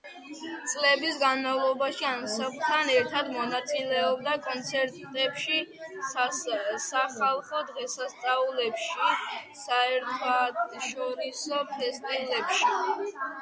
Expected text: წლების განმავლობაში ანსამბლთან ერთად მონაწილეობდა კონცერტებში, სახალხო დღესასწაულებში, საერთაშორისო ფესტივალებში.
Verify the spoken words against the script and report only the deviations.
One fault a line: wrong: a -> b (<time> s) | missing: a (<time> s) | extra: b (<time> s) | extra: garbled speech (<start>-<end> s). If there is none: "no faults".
no faults